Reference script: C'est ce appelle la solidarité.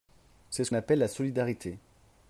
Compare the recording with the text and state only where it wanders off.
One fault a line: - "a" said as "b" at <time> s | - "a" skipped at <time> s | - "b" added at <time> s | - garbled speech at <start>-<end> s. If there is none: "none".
none